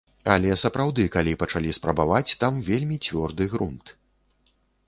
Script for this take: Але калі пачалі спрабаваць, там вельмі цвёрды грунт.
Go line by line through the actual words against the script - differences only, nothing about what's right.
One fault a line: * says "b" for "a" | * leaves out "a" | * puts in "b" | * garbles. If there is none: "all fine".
* puts in "сапраўды"